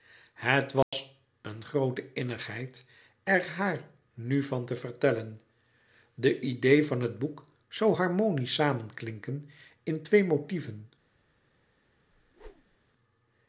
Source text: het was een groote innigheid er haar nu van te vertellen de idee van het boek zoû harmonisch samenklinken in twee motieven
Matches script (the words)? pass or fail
pass